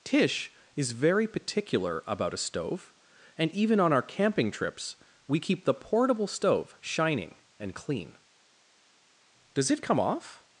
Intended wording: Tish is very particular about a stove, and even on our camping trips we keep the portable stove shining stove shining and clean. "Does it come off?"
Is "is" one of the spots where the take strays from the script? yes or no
no